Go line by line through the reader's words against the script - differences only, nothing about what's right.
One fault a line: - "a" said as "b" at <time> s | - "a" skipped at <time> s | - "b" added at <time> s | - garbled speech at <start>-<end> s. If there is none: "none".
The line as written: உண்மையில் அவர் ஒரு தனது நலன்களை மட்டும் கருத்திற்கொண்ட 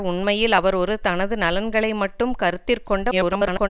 - garbled speech at 3.1-3.7 s